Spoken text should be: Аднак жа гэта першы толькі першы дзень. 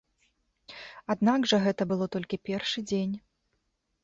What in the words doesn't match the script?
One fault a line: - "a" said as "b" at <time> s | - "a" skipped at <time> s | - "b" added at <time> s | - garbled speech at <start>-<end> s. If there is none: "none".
- "першы" said as "было" at 1.9 s